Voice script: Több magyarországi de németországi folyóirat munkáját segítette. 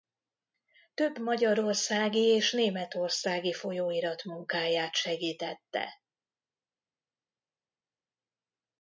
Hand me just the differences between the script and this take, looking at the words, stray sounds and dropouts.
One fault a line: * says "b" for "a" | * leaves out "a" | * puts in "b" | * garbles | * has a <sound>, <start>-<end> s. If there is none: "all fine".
* says "és" for "de"